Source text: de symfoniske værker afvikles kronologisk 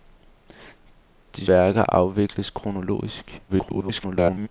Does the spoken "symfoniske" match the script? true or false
false